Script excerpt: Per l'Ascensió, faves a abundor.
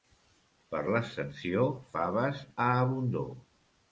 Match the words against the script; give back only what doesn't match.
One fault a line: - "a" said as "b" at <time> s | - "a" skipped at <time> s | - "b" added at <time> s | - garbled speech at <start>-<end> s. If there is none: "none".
none